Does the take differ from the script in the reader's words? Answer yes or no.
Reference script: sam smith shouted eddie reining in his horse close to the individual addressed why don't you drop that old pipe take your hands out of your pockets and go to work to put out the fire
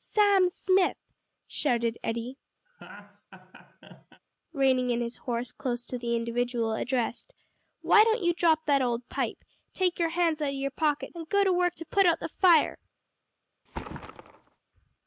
no